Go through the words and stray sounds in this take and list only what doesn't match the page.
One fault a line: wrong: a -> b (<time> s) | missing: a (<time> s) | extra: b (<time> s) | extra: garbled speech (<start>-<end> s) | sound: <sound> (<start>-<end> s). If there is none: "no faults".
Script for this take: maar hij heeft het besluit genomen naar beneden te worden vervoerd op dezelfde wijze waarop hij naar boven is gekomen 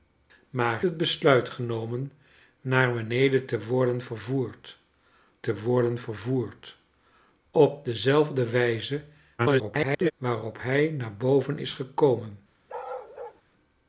missing: hij heeft (0.8 s)
extra: te worden vervoerd (5.4 s)
extra: garbled speech (9.4-10.1 s)
sound: bark (12.7-13.4 s)